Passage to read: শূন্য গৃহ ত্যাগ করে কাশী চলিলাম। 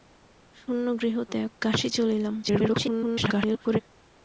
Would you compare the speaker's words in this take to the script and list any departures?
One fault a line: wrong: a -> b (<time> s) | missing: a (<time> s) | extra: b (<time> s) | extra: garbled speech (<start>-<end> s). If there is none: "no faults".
missing: করে (1.5 s)
extra: garbled speech (2.4-3.8 s)